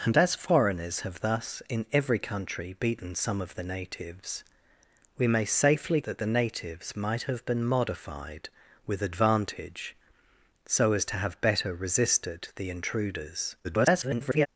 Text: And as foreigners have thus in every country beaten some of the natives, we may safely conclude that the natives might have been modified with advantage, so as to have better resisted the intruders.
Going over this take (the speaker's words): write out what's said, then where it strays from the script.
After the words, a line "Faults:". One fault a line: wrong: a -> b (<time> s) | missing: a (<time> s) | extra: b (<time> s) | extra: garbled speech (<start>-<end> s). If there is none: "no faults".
And as foreigners have thus in every country beaten some of the natives, we may safely that the natives might have been modified with advantage, so as to have better resisted the intruders. [garbled]
Faults:
missing: conclude (6.0 s)
extra: garbled speech (13.6-14.5 s)